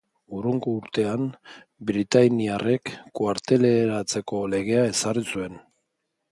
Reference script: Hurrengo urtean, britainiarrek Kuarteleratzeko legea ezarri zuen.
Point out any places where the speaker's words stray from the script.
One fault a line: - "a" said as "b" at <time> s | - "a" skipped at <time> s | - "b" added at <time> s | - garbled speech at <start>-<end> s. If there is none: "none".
none